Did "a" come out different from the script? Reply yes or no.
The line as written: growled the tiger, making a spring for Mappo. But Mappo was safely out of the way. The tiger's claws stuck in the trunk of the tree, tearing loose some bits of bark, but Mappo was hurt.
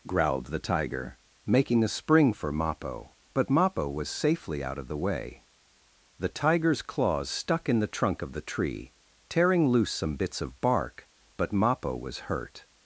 no